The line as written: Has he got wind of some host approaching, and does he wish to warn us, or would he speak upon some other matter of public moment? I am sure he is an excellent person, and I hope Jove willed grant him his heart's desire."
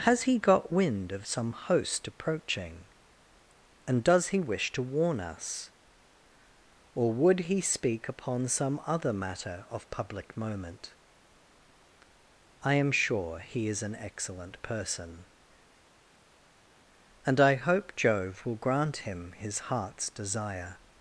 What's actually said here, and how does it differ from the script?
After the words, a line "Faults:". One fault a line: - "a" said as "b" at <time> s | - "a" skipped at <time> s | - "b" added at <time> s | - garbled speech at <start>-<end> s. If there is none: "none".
Has he got wind of some host approaching, and does he wish to warn us, or would he speak upon some other matter of public moment? I am sure he is an excellent person, and I hope Jove will grant him his heart's desire."
Faults:
- "willed" said as "will" at 18.4 s